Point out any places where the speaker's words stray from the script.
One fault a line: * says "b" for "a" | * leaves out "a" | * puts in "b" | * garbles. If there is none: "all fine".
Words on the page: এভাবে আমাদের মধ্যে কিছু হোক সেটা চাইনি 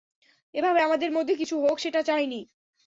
all fine